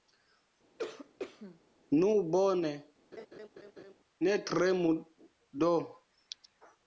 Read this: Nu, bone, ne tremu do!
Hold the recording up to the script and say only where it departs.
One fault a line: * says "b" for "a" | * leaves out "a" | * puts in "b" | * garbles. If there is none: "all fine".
all fine